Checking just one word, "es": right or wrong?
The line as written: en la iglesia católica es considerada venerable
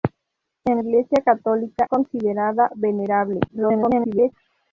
wrong